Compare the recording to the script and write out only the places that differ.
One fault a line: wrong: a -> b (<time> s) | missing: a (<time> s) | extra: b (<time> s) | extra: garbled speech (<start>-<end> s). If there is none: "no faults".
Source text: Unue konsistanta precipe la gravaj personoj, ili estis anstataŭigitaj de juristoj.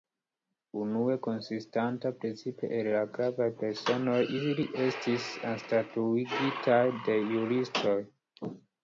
extra: el (2.8 s)